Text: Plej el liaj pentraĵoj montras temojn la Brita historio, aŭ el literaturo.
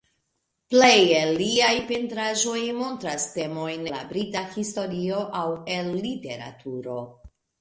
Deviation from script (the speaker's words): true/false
false